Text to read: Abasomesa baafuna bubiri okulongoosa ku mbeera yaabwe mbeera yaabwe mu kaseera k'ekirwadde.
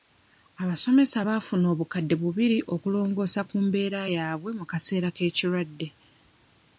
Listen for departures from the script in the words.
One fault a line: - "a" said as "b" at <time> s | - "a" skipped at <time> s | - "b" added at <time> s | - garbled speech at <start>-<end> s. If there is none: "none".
- "obukadde" added at 1.7 s
- "mbeera yaabwe" skipped at 4.5 s